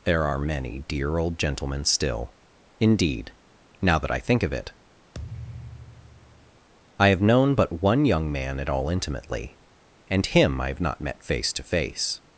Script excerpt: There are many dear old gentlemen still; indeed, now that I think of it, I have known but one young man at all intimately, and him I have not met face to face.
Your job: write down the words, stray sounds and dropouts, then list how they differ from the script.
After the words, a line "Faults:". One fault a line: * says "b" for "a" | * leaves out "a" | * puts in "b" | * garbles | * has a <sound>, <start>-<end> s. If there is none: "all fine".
There are many dear old gentlemen still; indeed, now that I think of it, I have known but one young man at all intimately, and him I have not met face to face.
Faults:
* has a thud, 5.1-6.7 s